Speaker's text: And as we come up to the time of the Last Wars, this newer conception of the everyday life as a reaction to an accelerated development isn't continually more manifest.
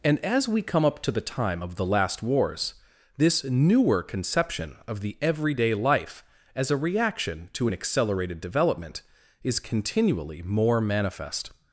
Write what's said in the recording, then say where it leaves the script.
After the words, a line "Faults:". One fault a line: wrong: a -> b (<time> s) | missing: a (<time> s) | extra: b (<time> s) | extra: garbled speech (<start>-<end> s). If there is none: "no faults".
And as we come up to the time of the Last Wars, this newer conception of the everyday life as a reaction to an accelerated development is continually more manifest.
Faults:
wrong: isn't -> is (9.4 s)